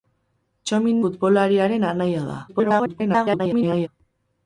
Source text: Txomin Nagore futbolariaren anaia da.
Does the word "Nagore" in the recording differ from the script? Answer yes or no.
yes